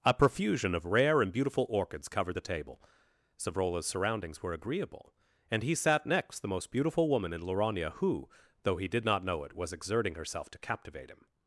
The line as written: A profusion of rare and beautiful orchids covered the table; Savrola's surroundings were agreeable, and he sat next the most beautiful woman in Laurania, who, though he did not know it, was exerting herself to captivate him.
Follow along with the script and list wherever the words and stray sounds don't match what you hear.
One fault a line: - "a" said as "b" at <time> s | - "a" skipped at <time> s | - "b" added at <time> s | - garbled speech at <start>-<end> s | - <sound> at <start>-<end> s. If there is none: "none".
none